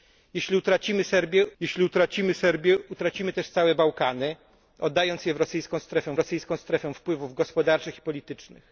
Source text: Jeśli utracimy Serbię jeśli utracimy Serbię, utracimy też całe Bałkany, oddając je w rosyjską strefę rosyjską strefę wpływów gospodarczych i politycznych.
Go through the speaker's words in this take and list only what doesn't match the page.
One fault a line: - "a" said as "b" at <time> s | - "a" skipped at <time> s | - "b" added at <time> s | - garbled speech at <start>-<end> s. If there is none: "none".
none